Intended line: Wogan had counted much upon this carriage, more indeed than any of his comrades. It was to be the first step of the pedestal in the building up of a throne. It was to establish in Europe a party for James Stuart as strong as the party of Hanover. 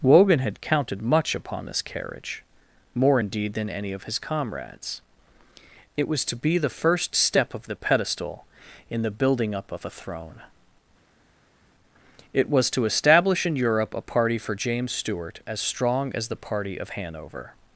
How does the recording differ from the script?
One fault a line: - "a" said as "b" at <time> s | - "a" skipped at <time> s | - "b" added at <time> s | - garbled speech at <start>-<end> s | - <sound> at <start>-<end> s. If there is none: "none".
none